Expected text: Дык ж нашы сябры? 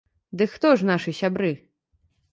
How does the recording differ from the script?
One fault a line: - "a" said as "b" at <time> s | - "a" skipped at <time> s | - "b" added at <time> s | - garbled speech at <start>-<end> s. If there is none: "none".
- "хто" added at 0.6 s